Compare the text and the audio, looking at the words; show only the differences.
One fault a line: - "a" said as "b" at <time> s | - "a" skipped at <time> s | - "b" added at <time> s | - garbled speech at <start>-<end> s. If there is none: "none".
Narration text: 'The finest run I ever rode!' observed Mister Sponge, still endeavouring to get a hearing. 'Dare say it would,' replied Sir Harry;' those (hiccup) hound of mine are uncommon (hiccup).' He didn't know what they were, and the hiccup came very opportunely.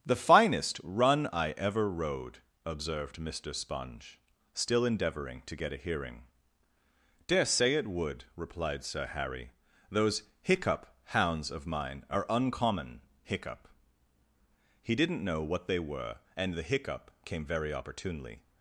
- "hound" said as "hounds" at 11.1 s